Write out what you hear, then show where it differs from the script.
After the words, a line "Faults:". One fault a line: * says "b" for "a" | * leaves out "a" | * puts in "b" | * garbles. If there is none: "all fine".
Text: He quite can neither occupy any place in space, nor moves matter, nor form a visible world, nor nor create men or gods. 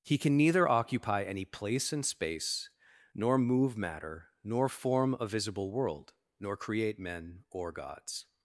He can neither occupy any place in space, nor move matter, nor form a visible world, nor create men or gods.
Faults:
* leaves out "quite"
* says "move" for "moves"
* leaves out "nor"